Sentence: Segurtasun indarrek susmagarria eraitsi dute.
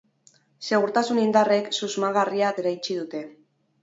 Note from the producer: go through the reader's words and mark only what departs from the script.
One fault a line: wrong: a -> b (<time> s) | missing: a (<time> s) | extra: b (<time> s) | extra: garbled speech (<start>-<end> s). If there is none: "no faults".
no faults